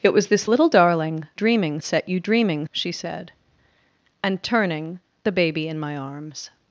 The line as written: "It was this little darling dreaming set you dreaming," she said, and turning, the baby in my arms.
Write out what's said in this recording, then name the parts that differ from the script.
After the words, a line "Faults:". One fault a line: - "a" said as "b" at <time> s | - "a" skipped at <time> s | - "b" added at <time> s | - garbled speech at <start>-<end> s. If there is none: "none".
"It was this little darling dreaming set you dreaming," she said, and turning, the baby in my arms.
Faults:
none